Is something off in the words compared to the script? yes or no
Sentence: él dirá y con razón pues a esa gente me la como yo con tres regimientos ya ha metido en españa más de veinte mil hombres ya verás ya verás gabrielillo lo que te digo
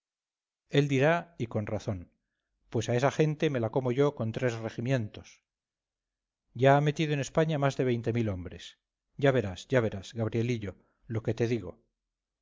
no